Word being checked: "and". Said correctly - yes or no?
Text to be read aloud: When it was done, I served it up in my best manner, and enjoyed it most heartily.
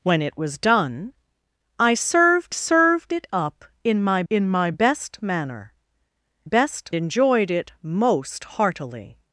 no